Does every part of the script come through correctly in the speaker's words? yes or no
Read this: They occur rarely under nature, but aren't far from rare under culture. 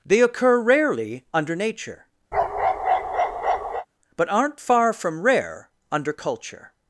yes